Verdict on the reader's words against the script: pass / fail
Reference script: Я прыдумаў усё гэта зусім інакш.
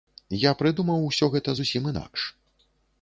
pass